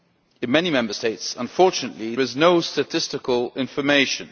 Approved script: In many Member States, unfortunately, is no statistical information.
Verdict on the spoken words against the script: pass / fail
pass